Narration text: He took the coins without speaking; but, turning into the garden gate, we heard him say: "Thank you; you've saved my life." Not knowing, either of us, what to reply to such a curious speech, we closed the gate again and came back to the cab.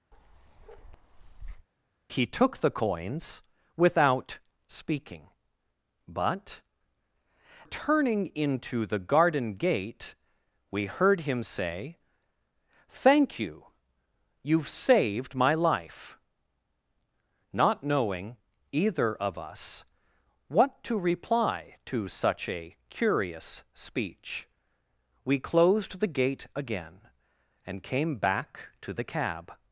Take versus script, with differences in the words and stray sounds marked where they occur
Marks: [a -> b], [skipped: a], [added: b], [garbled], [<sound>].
[bark] He took the coins without speaking; but, turning into the garden gate, we heard him say: "Thank you; you've saved my life." Not knowing, either of us, what to reply to such a curious speech, we closed the gate again and came back to the cab.